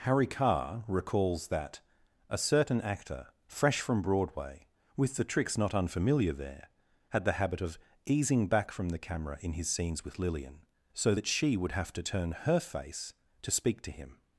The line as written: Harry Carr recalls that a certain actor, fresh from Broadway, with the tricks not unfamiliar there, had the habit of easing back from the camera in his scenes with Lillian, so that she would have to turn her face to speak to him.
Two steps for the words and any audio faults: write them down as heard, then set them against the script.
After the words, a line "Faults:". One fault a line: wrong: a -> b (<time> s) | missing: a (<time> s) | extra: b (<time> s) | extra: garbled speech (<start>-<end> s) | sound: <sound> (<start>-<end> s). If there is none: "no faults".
Harry Carr recalls that a certain actor, fresh from Broadway, with the tricks not unfamiliar there, had the habit of easing back from the camera in his scenes with Lillian, so that she would have to turn her face to speak to him.
Faults:
no faults